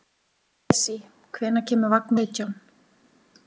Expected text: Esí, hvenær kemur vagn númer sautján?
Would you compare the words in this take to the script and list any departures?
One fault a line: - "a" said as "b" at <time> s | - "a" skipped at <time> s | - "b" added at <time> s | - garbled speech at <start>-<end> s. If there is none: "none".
- "númer" skipped at 2.1 s